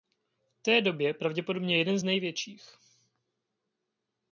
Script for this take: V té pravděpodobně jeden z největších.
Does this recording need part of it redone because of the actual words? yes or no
yes